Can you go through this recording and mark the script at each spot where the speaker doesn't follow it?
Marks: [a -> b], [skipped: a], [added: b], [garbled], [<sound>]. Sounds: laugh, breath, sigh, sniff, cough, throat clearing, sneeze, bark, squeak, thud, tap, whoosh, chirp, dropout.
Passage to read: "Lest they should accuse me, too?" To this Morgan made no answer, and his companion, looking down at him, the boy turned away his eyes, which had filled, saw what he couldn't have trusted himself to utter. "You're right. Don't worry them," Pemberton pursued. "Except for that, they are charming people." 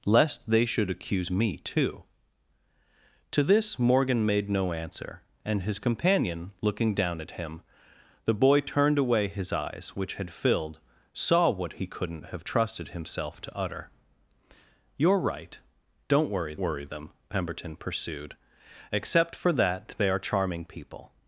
"Lest they should accuse me, too?" To this Morgan made no answer, and his companion, looking down at him, the boy turned away his eyes, which had filled, saw what he couldn't have trusted himself to utter. "You're right. Don't worry [added: worry] them," Pemberton pursued. "Except for that, they are charming people."